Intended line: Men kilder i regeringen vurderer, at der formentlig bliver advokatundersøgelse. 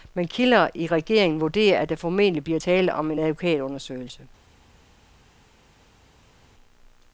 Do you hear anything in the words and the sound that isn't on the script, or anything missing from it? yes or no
yes